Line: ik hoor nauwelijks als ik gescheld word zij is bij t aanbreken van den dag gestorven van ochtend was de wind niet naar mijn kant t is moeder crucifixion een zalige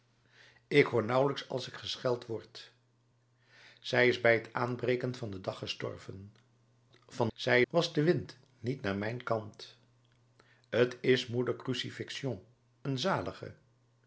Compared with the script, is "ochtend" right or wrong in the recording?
wrong